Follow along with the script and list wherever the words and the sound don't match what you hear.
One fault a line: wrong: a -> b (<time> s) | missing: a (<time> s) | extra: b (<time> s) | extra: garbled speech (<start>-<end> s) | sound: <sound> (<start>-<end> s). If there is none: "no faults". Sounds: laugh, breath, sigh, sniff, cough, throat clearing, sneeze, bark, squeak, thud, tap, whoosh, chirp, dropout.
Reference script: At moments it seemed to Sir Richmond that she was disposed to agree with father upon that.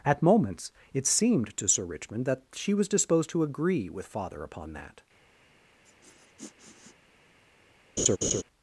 sound: sniff (5.8-7.0 s)
sound: laugh (8.0-8.4 s)